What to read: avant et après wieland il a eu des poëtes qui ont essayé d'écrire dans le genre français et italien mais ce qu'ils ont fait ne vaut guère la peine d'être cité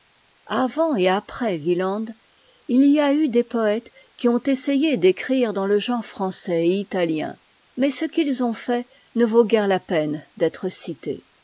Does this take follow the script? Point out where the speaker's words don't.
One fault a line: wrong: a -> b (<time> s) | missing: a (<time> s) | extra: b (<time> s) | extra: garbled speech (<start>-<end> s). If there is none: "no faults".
extra: y (2.9 s)